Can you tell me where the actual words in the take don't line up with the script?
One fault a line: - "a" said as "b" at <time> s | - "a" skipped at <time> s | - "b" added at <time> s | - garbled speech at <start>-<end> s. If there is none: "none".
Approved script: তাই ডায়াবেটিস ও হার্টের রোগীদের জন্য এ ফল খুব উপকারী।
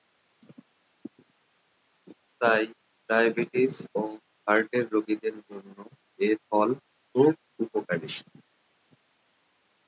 none